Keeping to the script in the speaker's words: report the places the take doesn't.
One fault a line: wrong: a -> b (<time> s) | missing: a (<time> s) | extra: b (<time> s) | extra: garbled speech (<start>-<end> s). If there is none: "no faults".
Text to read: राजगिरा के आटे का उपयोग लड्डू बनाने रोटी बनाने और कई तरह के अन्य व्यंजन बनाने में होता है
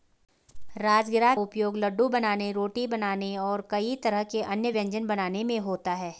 missing: के आटे का (1.3 s)